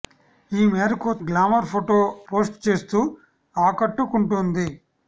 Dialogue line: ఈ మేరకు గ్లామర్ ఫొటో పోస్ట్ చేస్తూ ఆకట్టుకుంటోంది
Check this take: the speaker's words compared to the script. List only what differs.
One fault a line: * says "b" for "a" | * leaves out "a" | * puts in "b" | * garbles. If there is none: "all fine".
all fine